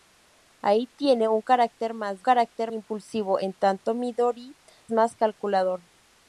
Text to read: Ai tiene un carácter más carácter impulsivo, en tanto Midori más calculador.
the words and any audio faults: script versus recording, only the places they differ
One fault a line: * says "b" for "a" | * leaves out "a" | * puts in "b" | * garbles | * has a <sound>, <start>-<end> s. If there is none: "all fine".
all fine